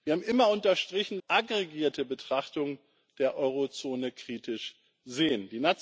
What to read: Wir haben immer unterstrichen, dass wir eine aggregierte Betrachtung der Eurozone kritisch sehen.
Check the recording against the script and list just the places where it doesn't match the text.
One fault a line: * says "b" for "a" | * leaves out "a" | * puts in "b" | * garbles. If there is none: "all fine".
* leaves out "dass wir eine"